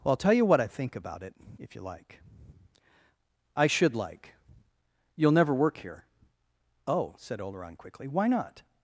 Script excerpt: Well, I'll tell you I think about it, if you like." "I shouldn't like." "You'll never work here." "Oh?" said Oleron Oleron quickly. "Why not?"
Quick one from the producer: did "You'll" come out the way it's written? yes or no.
yes